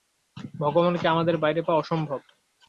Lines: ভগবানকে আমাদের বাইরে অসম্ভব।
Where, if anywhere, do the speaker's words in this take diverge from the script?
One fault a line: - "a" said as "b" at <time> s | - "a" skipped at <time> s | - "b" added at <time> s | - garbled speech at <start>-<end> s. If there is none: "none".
- "পাওয়া" added at 1.6 s